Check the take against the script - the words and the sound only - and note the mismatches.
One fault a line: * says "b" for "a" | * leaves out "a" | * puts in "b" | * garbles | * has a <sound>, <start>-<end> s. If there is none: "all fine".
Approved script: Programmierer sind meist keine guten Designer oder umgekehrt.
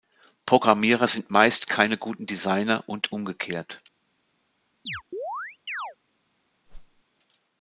* says "und" for "oder"
* has a chirp, 4.9-6.0 s
* has a whoosh, 6.7-7.0 s